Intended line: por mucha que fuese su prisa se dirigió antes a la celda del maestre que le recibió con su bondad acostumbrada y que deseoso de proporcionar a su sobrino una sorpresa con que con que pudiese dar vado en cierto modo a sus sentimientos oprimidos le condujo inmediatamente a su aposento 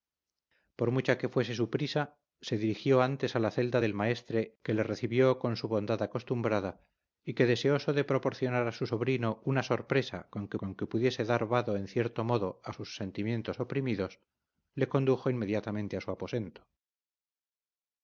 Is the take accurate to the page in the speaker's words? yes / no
yes